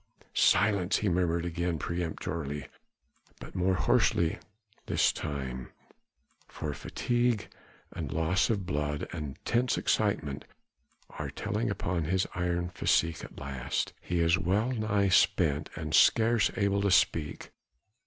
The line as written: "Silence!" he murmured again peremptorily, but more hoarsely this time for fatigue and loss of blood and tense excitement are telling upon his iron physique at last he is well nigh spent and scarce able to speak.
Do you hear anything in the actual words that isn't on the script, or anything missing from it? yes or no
no